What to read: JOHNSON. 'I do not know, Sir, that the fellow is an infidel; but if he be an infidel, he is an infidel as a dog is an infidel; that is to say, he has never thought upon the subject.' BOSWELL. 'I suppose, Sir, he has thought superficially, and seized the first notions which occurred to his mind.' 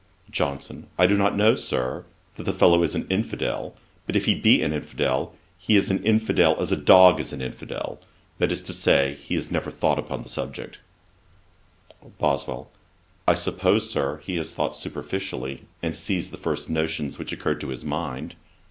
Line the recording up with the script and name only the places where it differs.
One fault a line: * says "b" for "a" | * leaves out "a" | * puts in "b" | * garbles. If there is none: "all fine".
all fine